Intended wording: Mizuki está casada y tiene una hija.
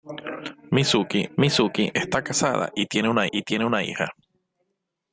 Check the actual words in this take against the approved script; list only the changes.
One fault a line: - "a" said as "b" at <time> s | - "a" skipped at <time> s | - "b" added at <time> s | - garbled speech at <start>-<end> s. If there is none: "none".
- "mizuki" added at 1.4 s
- "y tiene una" added at 3.3 s